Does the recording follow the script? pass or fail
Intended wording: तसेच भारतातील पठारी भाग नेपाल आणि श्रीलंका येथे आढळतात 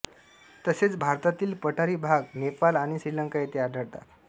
pass